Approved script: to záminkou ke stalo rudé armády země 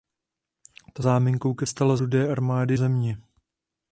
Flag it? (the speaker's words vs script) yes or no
no